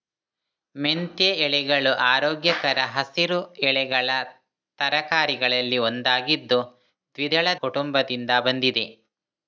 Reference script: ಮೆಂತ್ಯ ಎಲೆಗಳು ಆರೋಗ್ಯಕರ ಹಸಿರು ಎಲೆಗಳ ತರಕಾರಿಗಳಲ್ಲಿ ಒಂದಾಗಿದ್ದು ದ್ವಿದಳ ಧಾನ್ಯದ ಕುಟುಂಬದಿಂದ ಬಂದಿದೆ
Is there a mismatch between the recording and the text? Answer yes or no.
yes